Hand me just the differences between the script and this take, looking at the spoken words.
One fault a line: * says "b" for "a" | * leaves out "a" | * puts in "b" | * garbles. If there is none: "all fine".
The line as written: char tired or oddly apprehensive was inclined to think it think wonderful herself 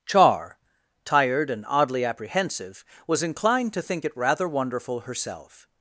* says "and" for "or"
* says "rather" for "think"